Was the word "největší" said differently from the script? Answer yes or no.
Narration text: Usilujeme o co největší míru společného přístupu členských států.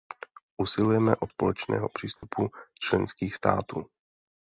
yes